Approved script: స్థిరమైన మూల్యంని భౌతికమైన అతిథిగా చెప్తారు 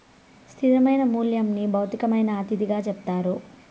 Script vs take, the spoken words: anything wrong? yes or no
no